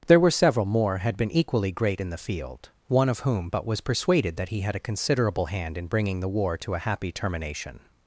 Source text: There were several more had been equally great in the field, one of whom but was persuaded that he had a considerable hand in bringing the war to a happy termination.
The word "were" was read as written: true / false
true